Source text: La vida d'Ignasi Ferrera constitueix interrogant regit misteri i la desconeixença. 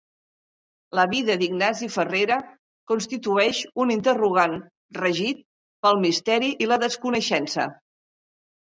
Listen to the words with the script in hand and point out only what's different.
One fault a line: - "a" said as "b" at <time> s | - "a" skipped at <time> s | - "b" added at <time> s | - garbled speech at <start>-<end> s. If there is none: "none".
- "un" added at 3.9 s
- "pel" added at 5.8 s